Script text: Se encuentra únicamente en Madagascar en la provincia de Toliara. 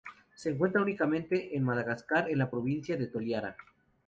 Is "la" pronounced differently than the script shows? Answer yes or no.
no